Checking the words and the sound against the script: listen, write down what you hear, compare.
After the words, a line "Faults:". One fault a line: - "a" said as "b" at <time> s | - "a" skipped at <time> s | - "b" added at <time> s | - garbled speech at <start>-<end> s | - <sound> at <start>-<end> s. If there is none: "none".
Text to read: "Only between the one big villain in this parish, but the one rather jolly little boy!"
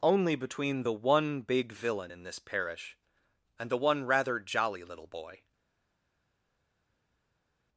"Only between the one big villain in this parish, and the one rather jolly little boy!"
Faults:
- "but" said as "and" at 3.6 s